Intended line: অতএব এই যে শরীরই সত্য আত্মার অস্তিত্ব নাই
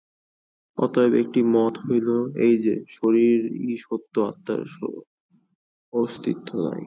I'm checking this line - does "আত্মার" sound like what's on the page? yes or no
yes